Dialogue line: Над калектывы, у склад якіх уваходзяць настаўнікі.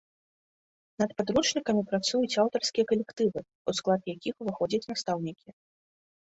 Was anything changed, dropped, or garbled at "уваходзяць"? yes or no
no